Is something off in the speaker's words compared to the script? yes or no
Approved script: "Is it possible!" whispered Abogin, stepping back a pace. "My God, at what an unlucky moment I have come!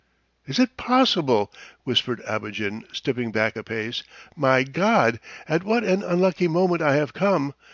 no